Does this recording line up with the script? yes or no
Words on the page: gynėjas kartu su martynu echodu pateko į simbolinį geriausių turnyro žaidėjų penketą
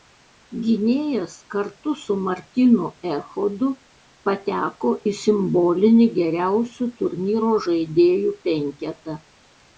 yes